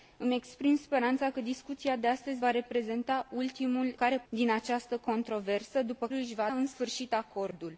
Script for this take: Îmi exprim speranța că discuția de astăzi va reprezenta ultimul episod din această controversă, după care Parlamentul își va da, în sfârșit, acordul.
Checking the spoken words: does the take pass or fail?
fail